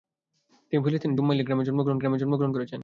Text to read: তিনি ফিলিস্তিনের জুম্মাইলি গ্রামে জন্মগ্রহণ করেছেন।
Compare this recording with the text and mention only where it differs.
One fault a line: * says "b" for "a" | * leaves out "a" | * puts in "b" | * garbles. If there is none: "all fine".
* puts in "গ্রামে জন্মগ্রহণ"